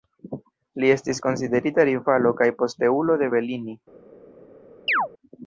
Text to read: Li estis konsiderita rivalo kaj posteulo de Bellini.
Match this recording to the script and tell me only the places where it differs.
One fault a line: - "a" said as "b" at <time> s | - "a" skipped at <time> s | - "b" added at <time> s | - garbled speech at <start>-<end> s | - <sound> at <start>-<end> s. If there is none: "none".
- chirp at 4.9-5.1 s